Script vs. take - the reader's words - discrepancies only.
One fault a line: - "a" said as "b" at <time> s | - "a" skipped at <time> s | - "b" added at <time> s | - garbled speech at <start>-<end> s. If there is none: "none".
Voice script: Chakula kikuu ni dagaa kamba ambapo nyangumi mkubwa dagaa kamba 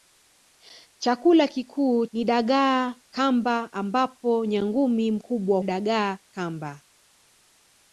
none